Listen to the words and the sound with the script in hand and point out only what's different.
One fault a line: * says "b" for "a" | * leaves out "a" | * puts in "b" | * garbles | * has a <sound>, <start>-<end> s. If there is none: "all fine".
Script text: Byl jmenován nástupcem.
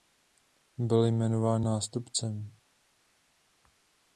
all fine